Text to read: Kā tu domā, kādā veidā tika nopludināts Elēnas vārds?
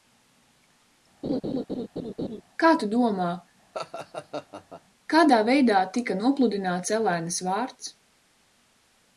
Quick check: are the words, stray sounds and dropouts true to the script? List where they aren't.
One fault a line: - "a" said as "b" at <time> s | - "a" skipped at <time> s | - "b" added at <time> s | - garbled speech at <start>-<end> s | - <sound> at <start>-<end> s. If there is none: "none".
- laugh at 1.2-2.4 s
- laugh at 3.7-4.8 s